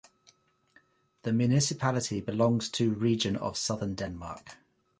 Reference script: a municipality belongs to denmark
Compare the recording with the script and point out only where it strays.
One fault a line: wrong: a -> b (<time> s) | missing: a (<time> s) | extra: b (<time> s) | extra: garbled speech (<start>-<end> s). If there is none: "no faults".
wrong: a -> the (1.2 s)
extra: region of southern (3.0 s)